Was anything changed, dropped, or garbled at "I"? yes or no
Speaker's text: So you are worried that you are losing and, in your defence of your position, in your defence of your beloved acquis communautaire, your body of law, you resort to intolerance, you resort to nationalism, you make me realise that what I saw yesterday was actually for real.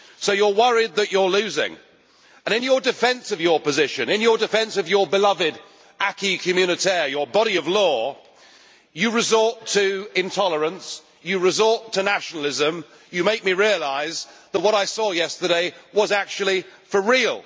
no